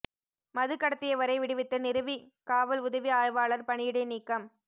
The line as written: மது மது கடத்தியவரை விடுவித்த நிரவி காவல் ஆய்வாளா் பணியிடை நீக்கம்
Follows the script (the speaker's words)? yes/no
no